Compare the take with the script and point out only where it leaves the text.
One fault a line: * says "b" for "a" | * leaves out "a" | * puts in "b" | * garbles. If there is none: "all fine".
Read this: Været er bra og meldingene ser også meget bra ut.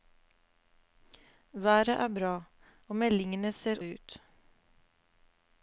* leaves out "også meget bra"